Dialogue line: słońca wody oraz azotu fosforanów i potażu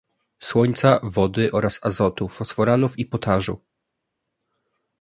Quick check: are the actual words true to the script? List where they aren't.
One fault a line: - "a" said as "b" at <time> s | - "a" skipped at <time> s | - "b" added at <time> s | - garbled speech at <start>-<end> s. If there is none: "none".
none